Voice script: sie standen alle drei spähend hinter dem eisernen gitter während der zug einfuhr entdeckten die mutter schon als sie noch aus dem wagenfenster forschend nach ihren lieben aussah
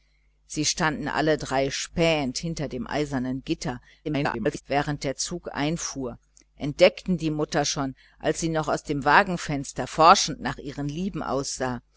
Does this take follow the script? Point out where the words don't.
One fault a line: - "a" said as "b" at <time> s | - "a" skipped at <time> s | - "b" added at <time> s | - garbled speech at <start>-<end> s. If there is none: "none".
- garbled speech at 4.0-4.6 s